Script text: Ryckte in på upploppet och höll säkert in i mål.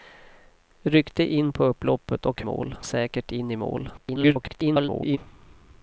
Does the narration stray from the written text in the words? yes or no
yes